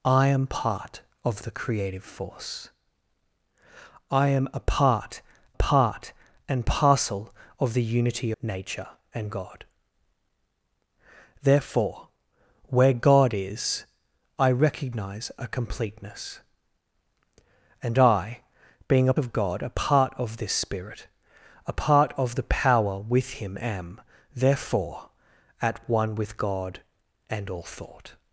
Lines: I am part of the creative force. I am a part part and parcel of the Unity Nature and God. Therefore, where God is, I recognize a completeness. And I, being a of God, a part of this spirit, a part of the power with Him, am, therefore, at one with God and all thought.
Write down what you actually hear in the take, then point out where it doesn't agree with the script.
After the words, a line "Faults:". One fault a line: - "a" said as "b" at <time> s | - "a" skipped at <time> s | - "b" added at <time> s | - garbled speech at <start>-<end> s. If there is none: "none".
I am part of the creative force. I am a part part and parcel of the Unity Nature and God. Therefore, where God is, I recognize a completeness. And I, being a of God, a part of this spirit, a part of the power with Him, am, therefore, at one with God and all thought.
Faults:
none